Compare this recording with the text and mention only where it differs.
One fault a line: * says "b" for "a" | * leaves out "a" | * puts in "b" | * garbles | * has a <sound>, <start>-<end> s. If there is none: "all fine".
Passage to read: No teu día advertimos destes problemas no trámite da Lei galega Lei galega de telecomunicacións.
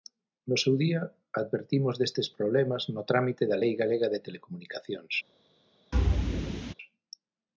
* says "seu" for "teu"
* leaves out "Lei galega"
* has a thud, 5.9-6.7 s